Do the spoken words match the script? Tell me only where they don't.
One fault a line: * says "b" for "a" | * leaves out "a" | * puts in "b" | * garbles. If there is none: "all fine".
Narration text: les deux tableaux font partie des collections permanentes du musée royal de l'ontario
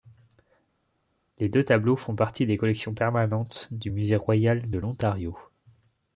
all fine